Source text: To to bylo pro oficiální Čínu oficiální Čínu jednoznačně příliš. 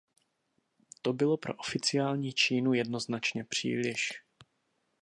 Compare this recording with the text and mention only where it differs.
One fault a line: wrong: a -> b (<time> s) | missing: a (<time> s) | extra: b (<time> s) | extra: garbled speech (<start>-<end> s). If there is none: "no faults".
missing: to (1.1 s)
missing: oficiální Čínu (2.7 s)